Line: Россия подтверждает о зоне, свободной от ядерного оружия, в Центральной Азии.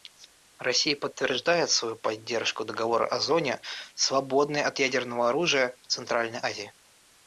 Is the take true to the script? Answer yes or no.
no